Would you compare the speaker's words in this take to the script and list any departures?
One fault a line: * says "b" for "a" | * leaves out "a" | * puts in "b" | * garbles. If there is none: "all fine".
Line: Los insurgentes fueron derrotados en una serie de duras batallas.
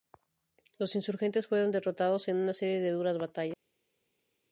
all fine